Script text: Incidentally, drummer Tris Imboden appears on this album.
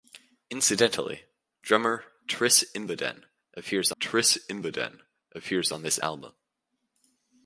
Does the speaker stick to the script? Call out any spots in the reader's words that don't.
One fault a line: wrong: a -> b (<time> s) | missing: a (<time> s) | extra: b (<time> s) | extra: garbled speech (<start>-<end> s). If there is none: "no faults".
extra: Tris Imboden appears (4.0 s)